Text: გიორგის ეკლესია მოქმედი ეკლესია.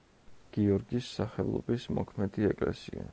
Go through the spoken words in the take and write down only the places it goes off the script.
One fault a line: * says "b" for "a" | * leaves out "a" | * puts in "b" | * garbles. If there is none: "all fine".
* says "სახელობის" for "ეკლესია"